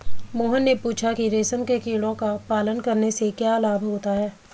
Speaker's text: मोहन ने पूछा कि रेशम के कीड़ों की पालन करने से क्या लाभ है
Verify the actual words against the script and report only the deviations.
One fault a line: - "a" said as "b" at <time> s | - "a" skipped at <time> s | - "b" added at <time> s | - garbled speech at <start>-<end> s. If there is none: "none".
- "की" said as "का" at 2.1 s
- "होता" added at 3.8 s